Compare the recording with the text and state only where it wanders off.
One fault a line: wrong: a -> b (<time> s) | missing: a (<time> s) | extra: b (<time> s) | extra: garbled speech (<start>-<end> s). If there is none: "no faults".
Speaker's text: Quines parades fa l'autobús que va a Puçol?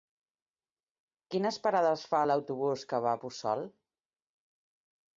no faults